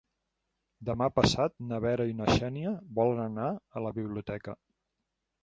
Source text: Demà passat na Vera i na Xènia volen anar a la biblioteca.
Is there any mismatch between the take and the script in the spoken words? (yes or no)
no